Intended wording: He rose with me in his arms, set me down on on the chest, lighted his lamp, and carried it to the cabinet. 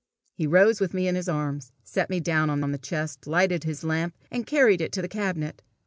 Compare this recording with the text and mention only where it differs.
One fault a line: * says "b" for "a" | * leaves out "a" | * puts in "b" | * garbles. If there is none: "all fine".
all fine